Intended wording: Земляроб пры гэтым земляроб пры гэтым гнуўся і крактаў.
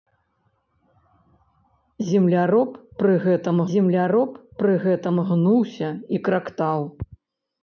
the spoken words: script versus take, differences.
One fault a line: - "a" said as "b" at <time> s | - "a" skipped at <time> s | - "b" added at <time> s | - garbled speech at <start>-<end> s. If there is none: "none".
none